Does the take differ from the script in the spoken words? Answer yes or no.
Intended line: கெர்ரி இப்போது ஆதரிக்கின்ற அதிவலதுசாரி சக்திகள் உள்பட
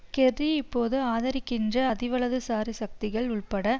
no